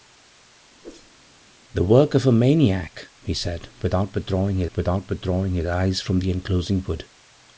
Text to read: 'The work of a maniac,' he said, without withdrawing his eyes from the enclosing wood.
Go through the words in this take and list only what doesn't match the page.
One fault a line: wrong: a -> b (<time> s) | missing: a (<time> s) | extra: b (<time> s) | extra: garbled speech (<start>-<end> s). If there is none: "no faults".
extra: without withdrawing his (4.8 s)